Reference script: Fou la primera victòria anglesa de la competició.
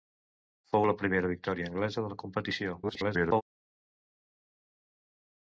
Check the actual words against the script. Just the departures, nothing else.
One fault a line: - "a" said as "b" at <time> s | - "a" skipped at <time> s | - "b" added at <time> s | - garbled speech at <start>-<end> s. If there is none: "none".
- garbled speech at 2.8-3.4 s